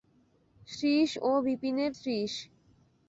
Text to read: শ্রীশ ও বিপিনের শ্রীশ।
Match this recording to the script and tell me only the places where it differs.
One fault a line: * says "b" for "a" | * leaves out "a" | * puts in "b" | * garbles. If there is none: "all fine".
all fine